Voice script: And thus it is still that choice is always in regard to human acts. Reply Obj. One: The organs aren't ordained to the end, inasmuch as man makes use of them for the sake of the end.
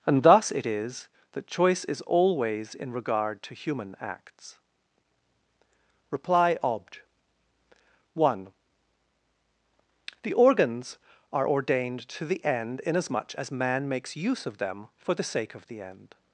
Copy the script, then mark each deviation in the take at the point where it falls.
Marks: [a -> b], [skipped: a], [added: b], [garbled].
And thus it is [skipped: still] that choice is always in regard to human acts. Reply Obj. One: The organs [aren't -> are] ordained to the end, inasmuch as man makes use of them for the sake of the end.